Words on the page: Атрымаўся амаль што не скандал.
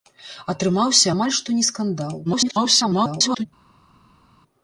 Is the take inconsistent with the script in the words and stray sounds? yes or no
yes